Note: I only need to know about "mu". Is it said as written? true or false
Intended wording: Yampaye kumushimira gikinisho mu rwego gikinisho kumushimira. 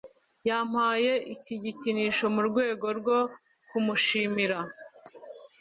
true